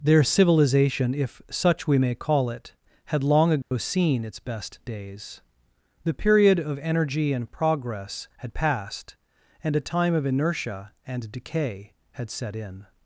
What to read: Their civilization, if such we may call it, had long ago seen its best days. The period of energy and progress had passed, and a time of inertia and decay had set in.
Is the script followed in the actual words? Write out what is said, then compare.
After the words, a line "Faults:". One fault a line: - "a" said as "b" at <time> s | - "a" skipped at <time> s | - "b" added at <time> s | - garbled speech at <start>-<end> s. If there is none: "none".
Their civilization, if such we may call it, had long ago seen its best days. The period of energy and progress had passed, and a time of inertia and decay had set in.
Faults:
none